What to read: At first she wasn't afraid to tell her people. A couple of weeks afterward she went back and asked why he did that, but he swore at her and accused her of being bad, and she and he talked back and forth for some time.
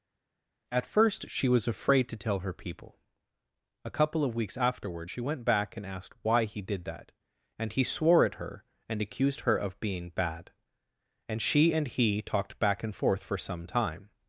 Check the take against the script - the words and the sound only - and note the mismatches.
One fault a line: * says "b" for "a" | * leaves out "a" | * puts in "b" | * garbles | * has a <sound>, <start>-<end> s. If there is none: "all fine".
* says "was" for "wasn't"
* says "and" for "but"